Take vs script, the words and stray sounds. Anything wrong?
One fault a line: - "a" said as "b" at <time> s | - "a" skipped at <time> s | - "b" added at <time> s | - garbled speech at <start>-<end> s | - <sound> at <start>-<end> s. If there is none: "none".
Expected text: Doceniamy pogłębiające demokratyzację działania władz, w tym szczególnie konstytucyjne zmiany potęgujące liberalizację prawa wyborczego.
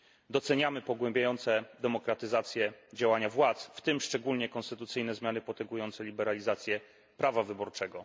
none